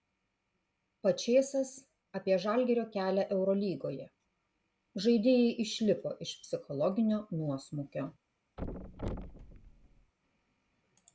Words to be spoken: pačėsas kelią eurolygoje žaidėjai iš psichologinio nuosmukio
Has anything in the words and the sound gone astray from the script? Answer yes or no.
yes